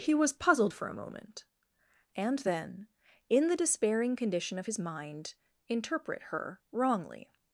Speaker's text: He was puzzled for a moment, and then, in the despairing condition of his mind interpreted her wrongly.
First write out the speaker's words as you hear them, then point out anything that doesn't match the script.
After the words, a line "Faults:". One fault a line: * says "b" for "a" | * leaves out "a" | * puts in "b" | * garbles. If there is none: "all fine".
He was puzzled for a moment, and then, in the despairing condition of his mind interpret her wrongly.
Faults:
* says "interpret" for "interpreted"